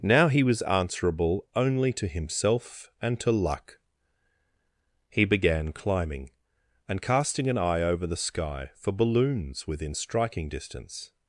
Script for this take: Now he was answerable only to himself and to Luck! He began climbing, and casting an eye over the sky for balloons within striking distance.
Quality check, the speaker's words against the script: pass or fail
pass